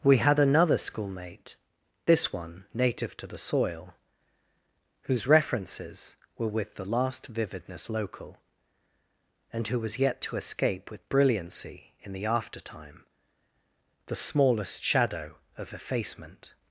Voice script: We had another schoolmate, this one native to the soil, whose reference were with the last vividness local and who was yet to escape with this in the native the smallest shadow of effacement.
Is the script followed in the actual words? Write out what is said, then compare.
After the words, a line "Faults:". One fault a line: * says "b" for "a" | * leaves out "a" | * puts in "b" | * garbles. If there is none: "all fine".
We had another schoolmate, this one native to the soil, whose references were with the last vividness local and who was yet to escape with brilliancy in the aftertime the smallest shadow of effacement.
Faults:
* says "references" for "reference"
* says "brilliancy" for "this"
* says "aftertime" for "native"